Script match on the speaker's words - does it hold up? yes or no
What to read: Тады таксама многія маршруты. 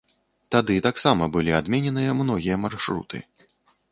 no